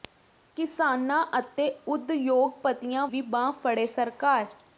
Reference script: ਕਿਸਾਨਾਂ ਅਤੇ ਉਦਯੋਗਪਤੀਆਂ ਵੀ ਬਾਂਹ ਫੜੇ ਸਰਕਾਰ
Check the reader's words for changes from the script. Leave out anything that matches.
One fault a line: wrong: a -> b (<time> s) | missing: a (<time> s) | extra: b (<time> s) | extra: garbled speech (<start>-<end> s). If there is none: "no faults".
no faults